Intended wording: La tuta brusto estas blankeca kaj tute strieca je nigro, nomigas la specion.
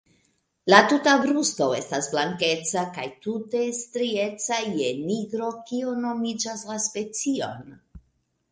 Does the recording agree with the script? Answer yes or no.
no